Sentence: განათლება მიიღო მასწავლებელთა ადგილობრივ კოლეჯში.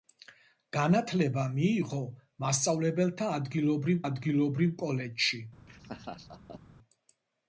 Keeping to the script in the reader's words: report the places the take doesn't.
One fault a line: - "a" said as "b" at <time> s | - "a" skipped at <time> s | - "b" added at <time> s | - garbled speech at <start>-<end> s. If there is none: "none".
- "ადგილობრივ" added at 4.1 s